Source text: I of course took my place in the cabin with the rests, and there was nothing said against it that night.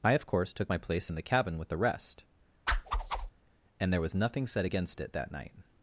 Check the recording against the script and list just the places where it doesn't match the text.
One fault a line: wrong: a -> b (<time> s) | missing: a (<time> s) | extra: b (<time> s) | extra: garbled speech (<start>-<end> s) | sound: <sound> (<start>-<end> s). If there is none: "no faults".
wrong: rests -> rest (1.8 s)
sound: whoosh (2.7-3.3 s)